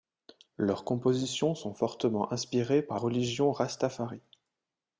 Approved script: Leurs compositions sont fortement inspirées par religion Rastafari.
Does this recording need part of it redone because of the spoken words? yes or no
no